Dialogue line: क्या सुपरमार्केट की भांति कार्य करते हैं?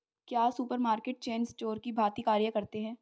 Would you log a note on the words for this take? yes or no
yes